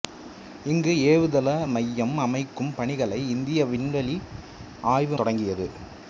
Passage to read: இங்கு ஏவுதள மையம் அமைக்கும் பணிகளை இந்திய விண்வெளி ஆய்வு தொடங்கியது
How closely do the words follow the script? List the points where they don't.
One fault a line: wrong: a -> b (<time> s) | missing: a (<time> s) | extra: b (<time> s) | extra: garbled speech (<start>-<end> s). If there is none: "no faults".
no faults